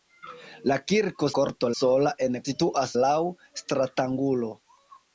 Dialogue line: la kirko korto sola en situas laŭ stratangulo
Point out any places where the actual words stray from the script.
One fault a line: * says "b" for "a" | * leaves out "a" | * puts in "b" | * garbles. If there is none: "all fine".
all fine